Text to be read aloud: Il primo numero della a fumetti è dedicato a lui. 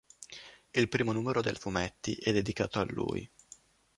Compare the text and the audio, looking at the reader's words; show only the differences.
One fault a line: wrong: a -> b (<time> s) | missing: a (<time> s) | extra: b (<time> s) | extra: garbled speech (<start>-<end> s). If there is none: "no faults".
no faults